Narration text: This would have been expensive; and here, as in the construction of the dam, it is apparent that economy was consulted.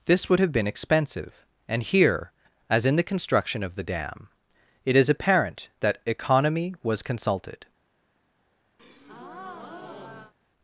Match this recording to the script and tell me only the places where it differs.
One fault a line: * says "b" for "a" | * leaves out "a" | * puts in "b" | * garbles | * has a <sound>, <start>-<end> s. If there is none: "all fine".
* has a breath, 8.8-10.3 s